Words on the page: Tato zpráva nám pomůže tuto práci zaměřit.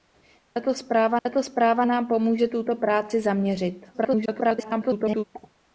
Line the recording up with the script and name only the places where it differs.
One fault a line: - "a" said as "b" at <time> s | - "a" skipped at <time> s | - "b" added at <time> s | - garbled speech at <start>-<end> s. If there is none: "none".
- "tato zpráva" added at 1.2 s
- garbled speech at 3.9-5.2 s